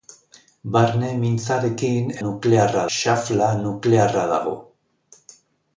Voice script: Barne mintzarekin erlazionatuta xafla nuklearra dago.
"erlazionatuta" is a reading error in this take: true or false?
true